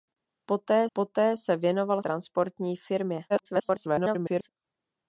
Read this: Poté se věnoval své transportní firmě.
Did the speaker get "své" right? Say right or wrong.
wrong